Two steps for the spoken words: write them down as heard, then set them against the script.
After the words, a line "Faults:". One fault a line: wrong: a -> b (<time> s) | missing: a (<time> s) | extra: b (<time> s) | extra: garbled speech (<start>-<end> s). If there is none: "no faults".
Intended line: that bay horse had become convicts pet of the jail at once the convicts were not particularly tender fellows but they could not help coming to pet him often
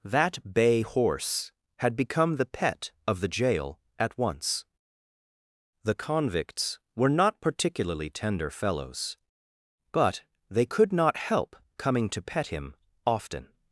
that bay horse had become the pet of the jail at once the convicts were not particularly tender fellows but they could not help coming to pet him often
Faults:
wrong: convicts -> the (2.4 s)